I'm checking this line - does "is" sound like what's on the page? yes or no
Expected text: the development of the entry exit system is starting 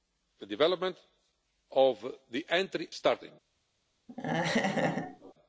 no